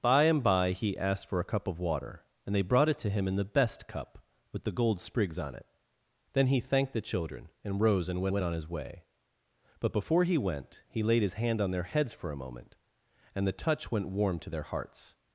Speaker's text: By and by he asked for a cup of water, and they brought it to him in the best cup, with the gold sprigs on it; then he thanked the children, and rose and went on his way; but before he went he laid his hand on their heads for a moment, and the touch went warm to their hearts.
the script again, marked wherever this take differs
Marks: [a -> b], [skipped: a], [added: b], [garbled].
By and by he asked for a cup of water, and they brought it to him in the best cup, with the gold sprigs on it; then he thanked the children, and rose and went [added: went] on his way; but before he went he laid his hand on their heads for a moment, and the touch went warm to their hearts.